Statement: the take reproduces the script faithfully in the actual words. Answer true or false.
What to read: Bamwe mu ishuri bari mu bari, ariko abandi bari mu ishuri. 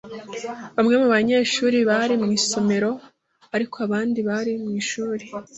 false